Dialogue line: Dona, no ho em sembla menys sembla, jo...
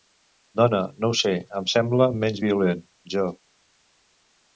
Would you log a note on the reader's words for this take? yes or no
yes